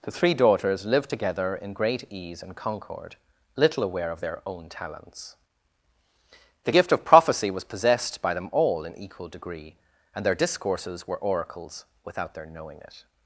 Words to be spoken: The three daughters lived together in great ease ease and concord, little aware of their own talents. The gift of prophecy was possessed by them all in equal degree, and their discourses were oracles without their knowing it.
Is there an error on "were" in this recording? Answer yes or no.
no